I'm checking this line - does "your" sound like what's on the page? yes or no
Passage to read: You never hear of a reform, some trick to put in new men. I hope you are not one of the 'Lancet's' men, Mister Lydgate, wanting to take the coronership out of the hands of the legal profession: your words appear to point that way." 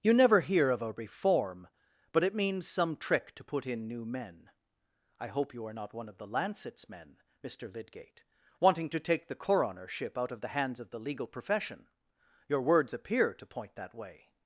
yes